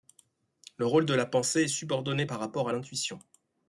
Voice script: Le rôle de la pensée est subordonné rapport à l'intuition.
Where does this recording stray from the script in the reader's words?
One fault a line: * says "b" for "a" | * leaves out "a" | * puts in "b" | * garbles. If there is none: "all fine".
* puts in "par"